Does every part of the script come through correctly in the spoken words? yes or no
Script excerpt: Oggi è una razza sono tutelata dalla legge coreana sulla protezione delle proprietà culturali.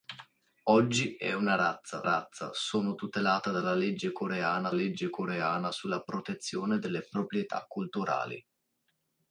no